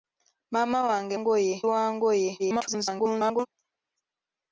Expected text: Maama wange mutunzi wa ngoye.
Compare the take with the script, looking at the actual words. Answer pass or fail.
fail